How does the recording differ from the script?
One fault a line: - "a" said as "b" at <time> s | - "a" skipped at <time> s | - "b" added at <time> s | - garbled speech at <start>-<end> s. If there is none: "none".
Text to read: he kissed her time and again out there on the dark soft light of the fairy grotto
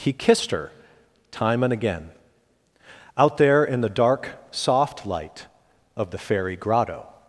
- "on" said as "in" at 3.6 s